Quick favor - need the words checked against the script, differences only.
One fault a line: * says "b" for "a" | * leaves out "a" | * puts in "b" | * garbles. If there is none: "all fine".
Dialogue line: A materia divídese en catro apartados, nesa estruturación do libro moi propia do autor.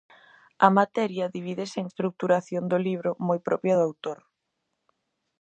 * leaves out "catro apartados nesa"